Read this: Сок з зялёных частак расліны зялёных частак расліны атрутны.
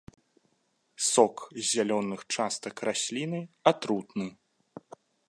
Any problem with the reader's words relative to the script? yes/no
yes